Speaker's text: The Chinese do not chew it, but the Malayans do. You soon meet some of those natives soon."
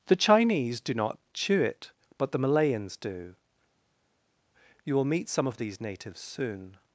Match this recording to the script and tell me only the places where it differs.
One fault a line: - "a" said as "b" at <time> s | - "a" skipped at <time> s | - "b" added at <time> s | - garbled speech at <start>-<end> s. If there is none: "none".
- "soon" said as "will" at 4.9 s
- "those" said as "these" at 5.6 s